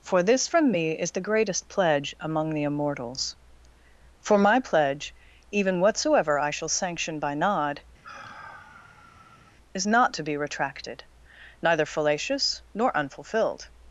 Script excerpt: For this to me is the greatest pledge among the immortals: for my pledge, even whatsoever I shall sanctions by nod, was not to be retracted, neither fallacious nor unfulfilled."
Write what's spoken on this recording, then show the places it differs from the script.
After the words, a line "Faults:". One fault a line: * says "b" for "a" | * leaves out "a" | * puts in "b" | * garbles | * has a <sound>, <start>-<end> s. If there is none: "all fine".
For this from me is the greatest pledge among the immortals: for my pledge, even whatsoever I shall sanction by nod, is not to be retracted, neither fallacious nor unfulfilled."
Faults:
* says "from" for "to"
* says "sanction" for "sanctions"
* has a sigh, 8.0-9.6 s
* says "is" for "was"